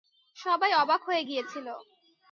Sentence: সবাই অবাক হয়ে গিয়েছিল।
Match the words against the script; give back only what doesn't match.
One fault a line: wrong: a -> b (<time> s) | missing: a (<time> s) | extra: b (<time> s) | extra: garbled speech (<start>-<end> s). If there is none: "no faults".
no faults